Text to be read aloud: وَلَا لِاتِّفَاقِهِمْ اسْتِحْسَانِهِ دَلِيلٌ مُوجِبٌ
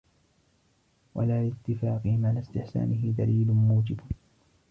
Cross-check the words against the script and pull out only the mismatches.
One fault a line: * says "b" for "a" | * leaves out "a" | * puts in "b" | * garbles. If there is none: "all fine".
* puts in "عَلَى"